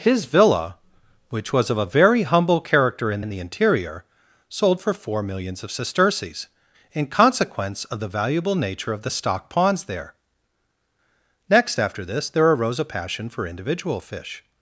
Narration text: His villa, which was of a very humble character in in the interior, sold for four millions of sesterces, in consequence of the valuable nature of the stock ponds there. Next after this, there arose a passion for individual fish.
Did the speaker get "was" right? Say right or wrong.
right